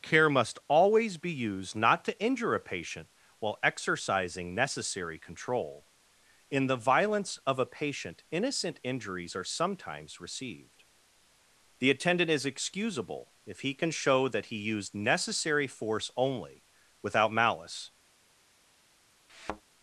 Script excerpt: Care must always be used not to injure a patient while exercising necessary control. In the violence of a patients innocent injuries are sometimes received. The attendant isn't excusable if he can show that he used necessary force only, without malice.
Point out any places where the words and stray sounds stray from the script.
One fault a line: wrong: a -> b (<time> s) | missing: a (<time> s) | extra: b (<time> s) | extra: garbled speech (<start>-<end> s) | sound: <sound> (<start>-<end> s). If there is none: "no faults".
wrong: patients -> patient (7.7 s)
wrong: isn't -> is (12.3 s)
sound: thud (19.3-19.6 s)